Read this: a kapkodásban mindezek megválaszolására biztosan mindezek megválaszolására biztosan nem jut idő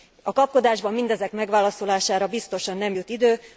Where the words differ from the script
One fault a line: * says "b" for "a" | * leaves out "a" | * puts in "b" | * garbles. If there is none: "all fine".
* leaves out "mindezek megválaszolására biztosan"